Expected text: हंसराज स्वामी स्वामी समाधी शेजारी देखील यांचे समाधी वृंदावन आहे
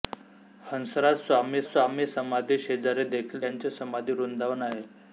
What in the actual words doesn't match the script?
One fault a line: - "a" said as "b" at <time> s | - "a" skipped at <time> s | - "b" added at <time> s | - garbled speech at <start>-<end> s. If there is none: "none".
none